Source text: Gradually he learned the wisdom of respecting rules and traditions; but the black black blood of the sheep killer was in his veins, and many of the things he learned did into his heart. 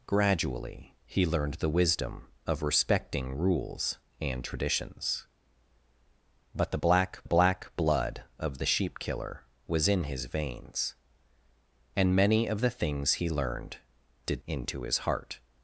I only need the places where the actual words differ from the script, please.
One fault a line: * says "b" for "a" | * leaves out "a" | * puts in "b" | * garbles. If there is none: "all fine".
all fine